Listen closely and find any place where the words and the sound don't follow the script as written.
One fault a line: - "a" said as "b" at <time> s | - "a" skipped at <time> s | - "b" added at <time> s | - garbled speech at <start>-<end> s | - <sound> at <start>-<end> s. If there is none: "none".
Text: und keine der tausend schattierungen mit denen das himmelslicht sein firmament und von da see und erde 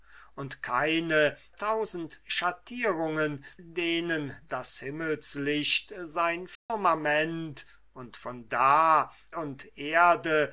- "der" skipped at 1.4 s
- "mit" skipped at 3.4 s
- dropout at 6.6-6.7 s
- "see" skipped at 9.1 s